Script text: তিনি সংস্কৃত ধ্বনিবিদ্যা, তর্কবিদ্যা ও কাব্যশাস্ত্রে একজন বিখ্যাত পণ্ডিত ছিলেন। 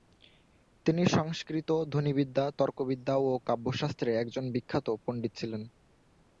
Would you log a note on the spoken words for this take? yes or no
no